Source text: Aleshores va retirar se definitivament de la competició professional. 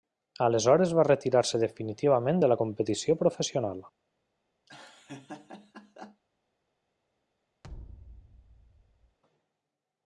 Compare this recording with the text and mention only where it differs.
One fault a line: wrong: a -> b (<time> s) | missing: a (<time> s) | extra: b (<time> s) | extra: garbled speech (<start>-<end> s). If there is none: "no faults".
no faults